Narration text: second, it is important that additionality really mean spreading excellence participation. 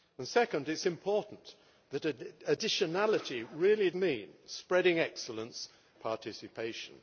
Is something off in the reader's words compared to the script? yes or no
no